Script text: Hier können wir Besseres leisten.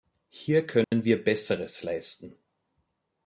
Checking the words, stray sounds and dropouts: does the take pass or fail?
fail